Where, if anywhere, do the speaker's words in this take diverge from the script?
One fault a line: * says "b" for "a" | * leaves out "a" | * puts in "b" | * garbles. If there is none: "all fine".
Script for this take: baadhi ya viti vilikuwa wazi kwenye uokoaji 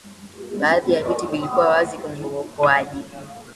all fine